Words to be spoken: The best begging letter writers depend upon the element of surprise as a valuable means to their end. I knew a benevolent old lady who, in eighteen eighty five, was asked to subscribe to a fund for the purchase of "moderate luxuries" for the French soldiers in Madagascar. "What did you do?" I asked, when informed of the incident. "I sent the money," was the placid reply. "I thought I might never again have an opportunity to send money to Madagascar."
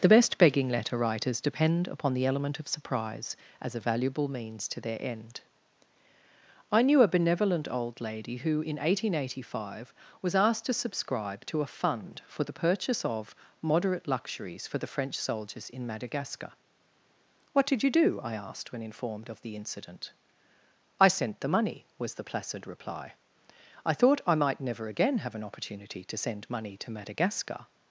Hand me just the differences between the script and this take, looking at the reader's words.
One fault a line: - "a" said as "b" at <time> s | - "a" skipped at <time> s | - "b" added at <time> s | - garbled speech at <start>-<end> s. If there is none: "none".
none